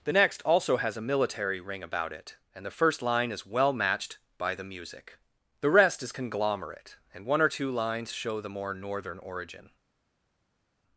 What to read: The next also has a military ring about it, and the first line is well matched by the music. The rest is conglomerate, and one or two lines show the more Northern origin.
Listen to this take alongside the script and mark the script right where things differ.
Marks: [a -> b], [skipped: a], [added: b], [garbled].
The next also has a military ring about it, and the first line is well matched by the music. The rest is conglomerate, and one or two lines show the more Northern origin.